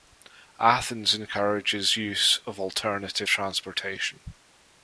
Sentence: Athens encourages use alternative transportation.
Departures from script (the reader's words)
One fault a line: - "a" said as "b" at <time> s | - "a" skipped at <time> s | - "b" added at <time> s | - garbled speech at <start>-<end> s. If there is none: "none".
- "of" added at 2.5 s